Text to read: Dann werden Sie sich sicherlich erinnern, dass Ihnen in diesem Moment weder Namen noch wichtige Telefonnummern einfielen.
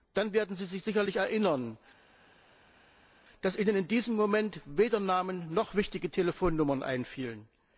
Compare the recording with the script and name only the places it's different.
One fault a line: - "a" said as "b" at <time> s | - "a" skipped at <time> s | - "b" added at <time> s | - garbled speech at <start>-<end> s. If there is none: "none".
none